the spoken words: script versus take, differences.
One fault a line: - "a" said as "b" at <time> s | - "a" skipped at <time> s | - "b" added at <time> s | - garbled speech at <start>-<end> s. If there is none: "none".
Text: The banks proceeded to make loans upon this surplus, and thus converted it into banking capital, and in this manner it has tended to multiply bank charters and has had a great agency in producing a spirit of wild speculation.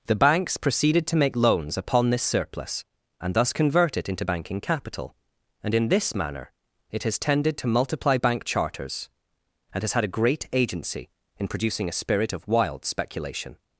- "converted" said as "convert" at 3.5 s